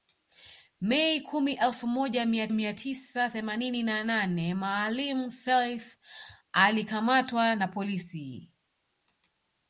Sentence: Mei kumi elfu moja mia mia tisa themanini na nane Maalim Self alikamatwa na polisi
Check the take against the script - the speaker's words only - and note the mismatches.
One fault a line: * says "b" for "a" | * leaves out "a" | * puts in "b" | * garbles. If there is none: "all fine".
all fine